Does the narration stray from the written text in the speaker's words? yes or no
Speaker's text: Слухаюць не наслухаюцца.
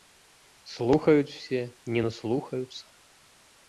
yes